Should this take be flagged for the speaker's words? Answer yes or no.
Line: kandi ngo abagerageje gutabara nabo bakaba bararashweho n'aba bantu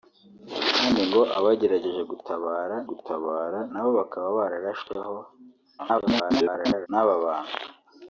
yes